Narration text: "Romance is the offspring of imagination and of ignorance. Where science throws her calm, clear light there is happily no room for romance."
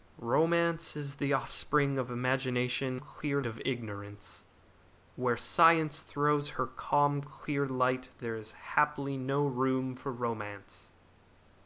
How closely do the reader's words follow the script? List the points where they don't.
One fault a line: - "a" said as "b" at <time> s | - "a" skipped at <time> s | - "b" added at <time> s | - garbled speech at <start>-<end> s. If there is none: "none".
- "and" said as "clear" at 3.0 s